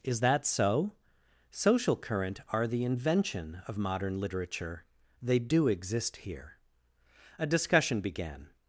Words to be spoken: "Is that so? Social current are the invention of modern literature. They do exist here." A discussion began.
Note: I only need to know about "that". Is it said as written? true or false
true